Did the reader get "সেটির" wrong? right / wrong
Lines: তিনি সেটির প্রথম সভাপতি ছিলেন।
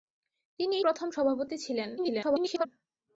wrong